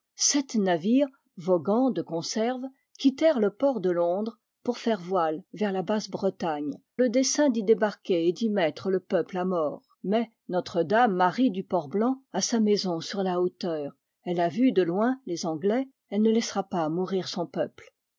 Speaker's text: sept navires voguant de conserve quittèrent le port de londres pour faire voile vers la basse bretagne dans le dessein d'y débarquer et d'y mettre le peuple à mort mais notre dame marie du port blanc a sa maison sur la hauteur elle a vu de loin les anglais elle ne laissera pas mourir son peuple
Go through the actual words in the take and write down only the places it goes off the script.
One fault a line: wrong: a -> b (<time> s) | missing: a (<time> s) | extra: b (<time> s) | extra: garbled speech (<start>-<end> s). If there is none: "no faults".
missing: dans (6.7 s)